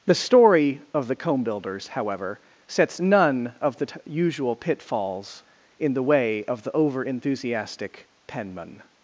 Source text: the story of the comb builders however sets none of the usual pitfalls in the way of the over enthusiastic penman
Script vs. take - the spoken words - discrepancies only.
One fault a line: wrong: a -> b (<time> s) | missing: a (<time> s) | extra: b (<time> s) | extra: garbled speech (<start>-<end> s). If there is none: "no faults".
extra: t (3.8 s)